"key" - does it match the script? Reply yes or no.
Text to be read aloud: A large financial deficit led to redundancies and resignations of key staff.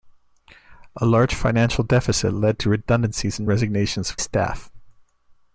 no